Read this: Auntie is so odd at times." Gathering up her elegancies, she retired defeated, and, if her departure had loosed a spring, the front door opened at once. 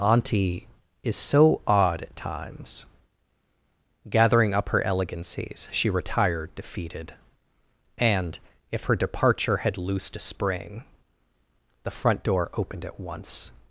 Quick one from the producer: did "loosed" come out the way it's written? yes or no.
yes